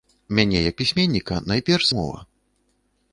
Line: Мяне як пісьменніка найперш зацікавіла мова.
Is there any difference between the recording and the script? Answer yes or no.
yes